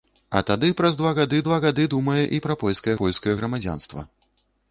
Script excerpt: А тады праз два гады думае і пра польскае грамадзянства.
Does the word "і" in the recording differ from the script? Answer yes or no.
no